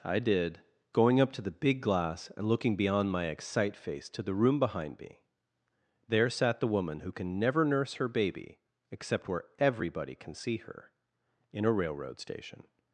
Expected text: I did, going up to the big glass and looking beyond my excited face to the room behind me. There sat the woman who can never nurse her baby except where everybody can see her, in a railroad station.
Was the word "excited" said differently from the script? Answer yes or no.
yes